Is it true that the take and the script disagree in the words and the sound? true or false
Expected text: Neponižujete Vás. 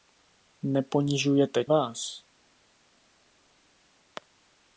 false